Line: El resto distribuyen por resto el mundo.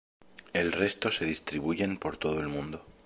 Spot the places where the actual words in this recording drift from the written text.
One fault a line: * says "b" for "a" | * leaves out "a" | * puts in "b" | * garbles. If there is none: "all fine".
* puts in "se"
* says "todo" for "resto"